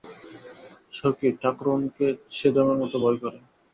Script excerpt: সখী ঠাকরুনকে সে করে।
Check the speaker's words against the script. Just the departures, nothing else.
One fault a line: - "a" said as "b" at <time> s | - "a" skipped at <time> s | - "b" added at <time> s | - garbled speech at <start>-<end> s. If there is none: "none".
- "যমের মতো ভয়" added at 2.5 s